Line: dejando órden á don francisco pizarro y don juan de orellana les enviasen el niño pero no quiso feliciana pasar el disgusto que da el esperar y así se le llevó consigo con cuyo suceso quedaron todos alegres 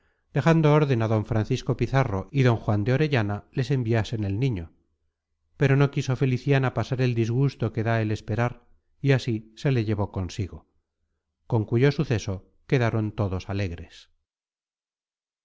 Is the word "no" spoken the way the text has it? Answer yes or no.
yes